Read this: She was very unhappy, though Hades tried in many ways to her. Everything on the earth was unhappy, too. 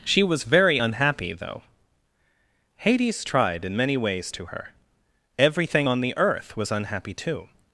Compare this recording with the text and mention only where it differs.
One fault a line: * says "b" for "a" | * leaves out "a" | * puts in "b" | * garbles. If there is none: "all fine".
all fine